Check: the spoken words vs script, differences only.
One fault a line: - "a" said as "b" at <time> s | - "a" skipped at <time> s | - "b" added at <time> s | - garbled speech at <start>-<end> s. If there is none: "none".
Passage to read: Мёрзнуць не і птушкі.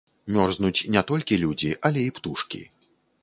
- "толькі людзі але" added at 1.1 s